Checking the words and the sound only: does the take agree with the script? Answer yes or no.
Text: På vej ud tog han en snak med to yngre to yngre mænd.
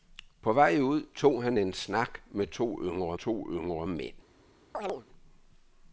no